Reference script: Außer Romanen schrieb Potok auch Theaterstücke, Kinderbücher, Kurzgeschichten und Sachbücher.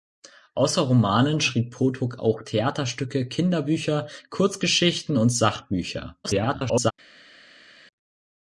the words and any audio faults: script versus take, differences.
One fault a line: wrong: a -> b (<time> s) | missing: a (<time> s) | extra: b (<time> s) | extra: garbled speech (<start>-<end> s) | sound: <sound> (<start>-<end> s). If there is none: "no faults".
extra: garbled speech (6.2-6.9 s)